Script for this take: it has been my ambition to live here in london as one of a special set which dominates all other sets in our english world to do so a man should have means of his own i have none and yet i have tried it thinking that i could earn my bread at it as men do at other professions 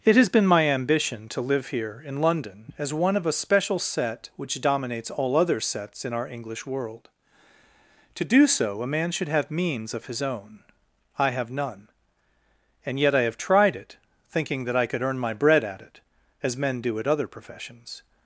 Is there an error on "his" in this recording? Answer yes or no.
no